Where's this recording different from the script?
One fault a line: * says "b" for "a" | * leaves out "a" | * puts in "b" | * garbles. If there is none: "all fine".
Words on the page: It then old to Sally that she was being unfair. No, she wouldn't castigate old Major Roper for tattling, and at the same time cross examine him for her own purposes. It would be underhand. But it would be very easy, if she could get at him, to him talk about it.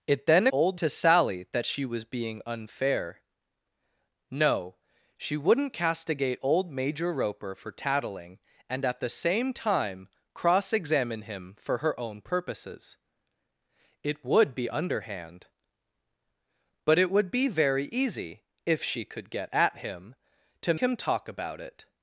all fine